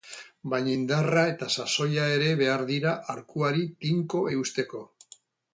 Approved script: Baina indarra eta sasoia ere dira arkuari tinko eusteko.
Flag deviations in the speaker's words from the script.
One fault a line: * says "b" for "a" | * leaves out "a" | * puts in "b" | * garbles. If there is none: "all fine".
* puts in "behar"